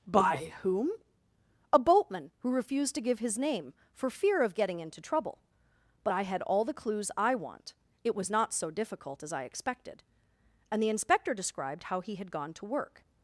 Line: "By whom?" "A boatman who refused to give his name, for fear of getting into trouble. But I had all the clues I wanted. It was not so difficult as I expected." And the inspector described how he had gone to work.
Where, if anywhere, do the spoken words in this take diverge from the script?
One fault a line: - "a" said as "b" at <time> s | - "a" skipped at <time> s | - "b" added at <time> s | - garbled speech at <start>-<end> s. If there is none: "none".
- "wanted" said as "want" at 7.4 s